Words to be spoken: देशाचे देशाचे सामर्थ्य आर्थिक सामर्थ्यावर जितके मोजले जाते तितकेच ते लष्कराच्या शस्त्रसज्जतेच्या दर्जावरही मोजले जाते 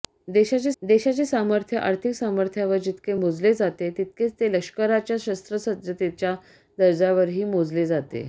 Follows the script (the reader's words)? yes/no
yes